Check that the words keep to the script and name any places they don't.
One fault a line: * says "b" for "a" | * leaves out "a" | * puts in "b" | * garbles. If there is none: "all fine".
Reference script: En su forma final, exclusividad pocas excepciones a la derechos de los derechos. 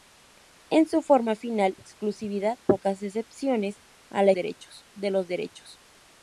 all fine